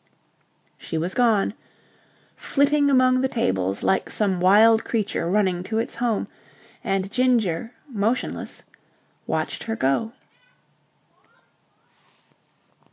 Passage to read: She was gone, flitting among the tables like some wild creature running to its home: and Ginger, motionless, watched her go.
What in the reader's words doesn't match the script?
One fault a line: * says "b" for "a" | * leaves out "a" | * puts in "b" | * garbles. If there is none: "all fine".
all fine